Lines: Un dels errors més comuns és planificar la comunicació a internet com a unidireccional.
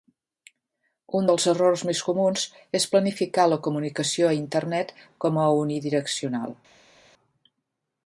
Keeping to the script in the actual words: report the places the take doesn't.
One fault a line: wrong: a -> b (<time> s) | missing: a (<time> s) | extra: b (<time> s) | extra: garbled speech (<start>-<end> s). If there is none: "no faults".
no faults